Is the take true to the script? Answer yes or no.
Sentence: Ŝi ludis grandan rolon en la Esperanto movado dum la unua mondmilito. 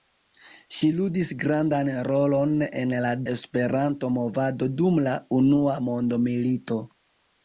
yes